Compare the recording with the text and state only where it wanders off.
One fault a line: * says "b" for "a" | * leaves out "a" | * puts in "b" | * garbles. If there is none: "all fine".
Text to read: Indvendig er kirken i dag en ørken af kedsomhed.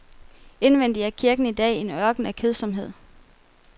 all fine